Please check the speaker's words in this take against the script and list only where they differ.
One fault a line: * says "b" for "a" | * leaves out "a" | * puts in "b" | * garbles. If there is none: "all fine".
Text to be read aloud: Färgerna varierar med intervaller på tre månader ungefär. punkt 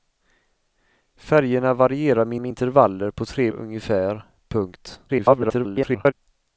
* puts in "med"
* leaves out "månader"
* garbles